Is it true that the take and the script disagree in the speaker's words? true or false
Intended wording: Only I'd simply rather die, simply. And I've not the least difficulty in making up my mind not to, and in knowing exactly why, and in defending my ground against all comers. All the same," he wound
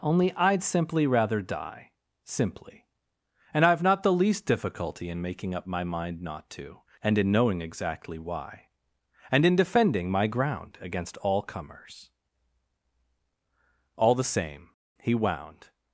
false